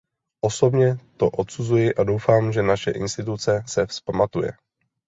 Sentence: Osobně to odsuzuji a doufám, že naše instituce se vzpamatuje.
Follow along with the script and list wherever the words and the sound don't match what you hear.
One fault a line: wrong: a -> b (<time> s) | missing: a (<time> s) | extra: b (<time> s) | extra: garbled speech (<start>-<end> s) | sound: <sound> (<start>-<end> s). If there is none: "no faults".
no faults